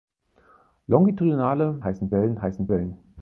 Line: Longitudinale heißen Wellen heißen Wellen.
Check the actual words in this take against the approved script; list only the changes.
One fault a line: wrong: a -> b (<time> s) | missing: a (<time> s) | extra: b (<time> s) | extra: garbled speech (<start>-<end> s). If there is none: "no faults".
no faults